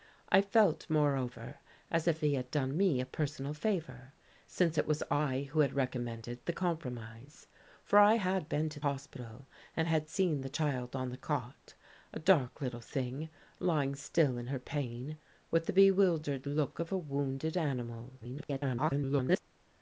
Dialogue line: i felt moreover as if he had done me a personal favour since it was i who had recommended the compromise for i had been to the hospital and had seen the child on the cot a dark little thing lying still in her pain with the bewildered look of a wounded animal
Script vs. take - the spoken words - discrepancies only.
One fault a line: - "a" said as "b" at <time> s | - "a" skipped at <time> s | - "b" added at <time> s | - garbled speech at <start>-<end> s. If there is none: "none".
- "the" skipped at 8.8 s
- garbled speech at 18.2-19.4 s